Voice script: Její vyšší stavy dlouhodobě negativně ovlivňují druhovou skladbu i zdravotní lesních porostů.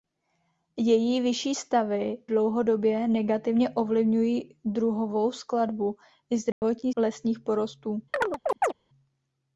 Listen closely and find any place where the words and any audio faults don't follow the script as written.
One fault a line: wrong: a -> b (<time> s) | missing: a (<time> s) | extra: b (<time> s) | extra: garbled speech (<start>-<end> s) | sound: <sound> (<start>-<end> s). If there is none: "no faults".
sound: dropout (6.5-6.6 s)
sound: chirp (8.1-8.7 s)